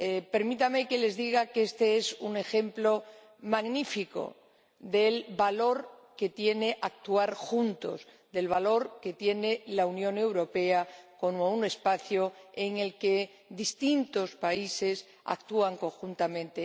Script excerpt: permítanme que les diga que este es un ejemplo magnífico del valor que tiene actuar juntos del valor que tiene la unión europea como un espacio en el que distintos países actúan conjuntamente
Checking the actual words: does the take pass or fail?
pass